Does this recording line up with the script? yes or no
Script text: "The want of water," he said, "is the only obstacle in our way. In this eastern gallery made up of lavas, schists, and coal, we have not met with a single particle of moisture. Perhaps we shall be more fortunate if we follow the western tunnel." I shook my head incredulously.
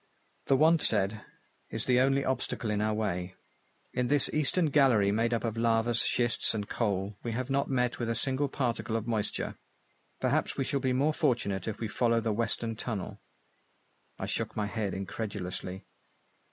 no